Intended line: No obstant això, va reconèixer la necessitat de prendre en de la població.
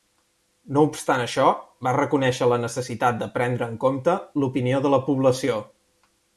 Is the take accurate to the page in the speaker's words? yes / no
no